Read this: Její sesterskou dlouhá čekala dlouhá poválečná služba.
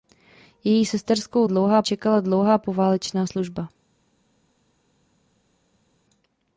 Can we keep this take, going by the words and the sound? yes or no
yes